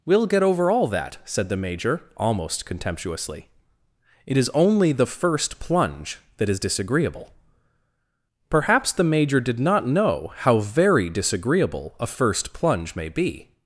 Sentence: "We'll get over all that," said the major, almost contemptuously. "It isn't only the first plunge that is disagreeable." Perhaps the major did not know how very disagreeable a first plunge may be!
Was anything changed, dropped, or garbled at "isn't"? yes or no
yes